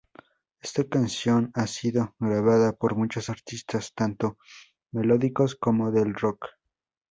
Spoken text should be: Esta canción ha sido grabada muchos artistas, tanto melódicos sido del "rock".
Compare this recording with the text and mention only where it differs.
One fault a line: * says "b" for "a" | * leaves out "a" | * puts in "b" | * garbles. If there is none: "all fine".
* puts in "por"
* says "como" for "sido"